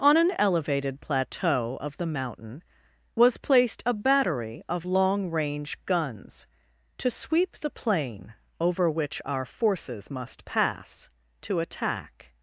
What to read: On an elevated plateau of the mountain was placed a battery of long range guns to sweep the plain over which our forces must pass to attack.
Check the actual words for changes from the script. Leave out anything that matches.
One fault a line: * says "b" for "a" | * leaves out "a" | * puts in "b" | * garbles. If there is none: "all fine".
all fine